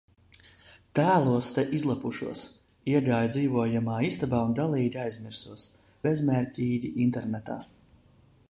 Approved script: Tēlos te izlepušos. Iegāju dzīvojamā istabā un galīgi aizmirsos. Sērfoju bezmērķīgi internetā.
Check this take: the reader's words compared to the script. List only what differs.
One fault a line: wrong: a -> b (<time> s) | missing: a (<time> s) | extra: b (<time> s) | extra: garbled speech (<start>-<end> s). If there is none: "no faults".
missing: Sērfoju (5.7 s)